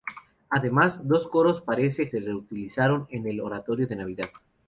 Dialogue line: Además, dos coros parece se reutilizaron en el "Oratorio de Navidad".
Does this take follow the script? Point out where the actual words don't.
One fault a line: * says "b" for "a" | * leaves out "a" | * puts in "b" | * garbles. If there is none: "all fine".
all fine